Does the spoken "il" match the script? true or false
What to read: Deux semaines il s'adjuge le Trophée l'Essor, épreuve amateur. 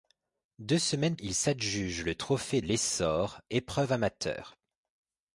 true